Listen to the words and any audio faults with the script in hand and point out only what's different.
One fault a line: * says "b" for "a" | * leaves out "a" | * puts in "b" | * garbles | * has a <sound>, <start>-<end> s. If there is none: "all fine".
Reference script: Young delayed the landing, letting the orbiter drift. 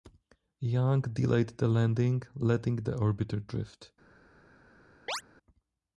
* has a chirp, 5.1-5.2 s